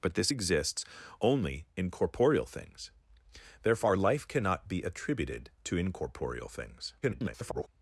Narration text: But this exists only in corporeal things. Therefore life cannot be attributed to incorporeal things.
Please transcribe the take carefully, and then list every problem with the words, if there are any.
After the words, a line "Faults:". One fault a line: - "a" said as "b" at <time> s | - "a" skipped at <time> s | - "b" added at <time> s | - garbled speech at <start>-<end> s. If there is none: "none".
But this exists only in corporeal things. Therefore life cannot be attributed to incorporeal things. [garbled]
Faults:
- garbled speech at 7.0-7.7 s